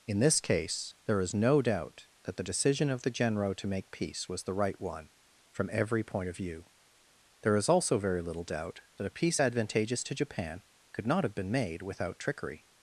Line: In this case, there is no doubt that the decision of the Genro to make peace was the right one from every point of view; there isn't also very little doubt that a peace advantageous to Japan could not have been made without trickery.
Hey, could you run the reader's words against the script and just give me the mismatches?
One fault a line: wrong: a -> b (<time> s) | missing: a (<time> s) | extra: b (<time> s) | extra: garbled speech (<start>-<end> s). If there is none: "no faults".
wrong: isn't -> is (7.5 s)